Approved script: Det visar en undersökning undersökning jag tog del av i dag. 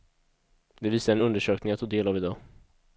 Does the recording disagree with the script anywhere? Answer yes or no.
yes